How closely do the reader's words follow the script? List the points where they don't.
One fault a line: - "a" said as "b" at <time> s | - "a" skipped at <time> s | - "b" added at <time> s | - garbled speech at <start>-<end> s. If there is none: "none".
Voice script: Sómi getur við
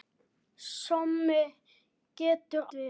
none